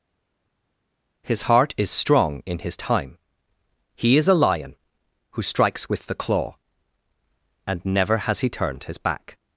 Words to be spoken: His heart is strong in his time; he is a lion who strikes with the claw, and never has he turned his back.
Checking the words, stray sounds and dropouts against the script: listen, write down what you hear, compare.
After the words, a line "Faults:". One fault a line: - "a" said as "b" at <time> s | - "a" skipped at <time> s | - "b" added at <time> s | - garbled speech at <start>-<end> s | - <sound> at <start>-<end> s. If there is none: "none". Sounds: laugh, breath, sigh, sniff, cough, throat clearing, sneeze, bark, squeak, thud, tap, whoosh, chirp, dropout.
His heart is strong in his time; he is a lion who strikes with the claw, and never has he turned his back.
Faults:
none